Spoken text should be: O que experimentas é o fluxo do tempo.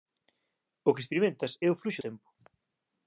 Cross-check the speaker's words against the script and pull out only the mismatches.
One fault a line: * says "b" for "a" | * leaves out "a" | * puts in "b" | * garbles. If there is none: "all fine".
* leaves out "do"